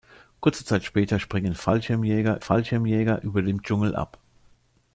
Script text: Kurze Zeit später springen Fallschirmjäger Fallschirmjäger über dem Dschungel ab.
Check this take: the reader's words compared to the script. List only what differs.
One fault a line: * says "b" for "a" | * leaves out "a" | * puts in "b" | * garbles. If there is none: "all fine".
all fine